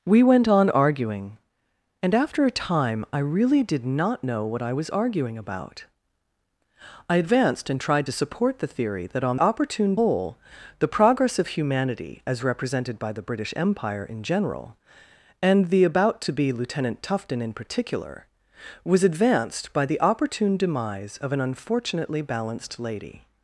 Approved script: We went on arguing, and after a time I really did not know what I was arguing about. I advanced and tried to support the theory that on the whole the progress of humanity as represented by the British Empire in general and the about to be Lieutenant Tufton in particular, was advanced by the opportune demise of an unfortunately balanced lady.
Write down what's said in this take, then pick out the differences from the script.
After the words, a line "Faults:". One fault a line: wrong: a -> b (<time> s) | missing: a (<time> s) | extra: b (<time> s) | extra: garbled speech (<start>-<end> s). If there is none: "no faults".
We went on arguing, and after a time I really did not know what I was arguing about. I advanced and tried to support the theory that on opportune whole the progress of humanity as represented by the British Empire in general and the about to be Lieutenant Tufton in particular, was advanced by the opportune demise of an unfortunately balanced lady.
Faults:
wrong: the -> opportune (9.4 s)